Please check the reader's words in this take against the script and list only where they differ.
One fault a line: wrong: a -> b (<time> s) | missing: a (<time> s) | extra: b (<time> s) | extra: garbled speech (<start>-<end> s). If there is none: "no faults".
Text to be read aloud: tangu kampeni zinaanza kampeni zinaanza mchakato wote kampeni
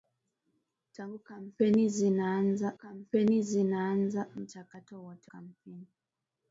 no faults